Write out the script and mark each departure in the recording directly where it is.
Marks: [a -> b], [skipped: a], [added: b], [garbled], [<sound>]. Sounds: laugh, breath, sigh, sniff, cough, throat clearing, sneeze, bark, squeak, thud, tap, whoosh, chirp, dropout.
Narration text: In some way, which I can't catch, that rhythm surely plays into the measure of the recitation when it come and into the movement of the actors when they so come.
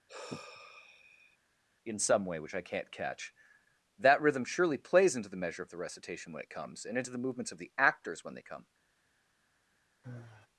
[sigh] In some way, which I can't catch, that rhythm surely plays into the measure of the recitation when it [come -> comes] and into the [movement -> movements] of the actors when they [skipped: so] come. [sigh]